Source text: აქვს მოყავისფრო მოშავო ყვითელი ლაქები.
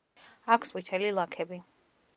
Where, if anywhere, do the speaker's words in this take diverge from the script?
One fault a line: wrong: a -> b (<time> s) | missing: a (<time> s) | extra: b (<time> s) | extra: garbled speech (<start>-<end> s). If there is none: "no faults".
missing: მოყავისფრო მოშავო (0.7 s)